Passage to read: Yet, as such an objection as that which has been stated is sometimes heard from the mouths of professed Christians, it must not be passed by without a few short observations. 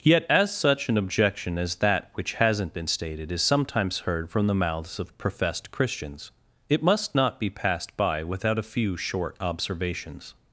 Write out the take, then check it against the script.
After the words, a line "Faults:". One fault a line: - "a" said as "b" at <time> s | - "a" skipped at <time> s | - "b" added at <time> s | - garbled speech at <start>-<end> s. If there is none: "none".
Yet, as such an objection as that which hasn't been stated is sometimes heard from the mouths of professed Christians, it must not be passed by without a few short observations.
Faults:
- "has" said as "hasn't" at 2.3 s